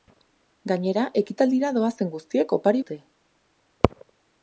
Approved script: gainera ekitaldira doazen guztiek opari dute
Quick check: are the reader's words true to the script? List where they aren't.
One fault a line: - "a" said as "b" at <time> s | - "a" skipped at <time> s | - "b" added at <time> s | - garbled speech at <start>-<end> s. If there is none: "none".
none